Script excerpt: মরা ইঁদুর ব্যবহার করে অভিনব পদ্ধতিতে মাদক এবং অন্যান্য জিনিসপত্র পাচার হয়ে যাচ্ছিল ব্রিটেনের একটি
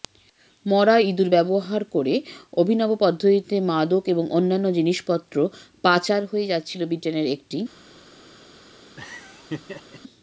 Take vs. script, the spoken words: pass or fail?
pass